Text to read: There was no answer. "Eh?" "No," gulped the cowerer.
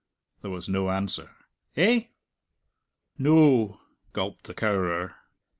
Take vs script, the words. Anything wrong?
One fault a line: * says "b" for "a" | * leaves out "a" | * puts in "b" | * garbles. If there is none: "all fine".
all fine